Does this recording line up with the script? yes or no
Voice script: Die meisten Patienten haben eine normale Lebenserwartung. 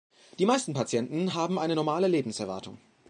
yes